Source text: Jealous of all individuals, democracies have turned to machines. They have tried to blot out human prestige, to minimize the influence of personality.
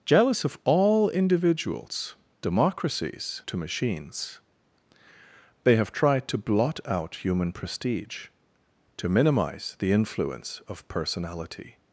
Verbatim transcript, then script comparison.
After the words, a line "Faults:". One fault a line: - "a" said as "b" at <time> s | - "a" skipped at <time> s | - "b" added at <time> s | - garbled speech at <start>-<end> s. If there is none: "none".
Jealous of all individuals, democracies to machines. They have tried to blot out human prestige, to minimize the influence of personality.
Faults:
- "have turned" skipped at 3.4 s